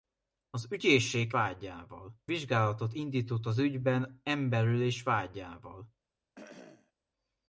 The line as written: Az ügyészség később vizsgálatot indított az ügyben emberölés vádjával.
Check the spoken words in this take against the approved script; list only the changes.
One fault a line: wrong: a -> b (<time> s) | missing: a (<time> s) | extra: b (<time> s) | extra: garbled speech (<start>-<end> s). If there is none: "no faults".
wrong: később -> vádjával (1.3 s)